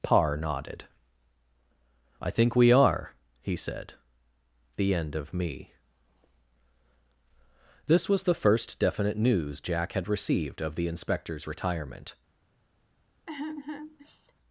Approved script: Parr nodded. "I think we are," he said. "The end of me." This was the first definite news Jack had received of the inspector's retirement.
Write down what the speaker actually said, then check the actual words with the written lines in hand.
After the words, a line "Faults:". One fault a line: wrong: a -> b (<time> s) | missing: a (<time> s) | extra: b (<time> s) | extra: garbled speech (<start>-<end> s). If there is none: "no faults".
Parr nodded. "I think we are," he said. "The end of me." This was the first definite news Jack had received of the inspector's retirement.
Faults:
no faults